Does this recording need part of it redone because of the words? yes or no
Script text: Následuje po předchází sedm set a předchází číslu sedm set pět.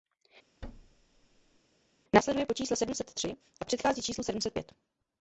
yes